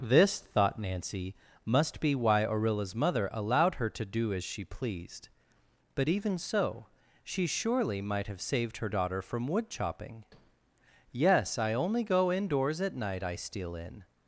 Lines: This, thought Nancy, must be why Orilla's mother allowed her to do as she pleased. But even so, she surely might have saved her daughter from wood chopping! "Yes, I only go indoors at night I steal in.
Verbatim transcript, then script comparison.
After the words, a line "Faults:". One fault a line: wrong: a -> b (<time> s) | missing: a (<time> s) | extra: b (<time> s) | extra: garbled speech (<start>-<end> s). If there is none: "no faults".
This, thought Nancy, must be why Orilla's mother allowed her to do as she pleased. But even so, she surely might have saved her daughter from wood chopping! "Yes, I only go indoors at night I steal in.
Faults:
no faults